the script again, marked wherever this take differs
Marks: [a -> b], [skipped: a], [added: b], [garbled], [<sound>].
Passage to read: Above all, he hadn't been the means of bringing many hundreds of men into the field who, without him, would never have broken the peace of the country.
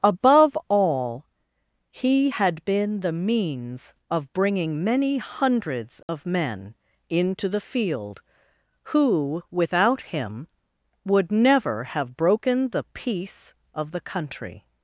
Above all, he [hadn't -> had] been the means of bringing many hundreds of [dropout] men into the field who, without him, would never have broken the peace of the country.